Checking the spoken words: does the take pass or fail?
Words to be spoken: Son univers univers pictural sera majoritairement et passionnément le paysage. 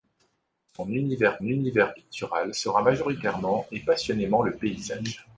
pass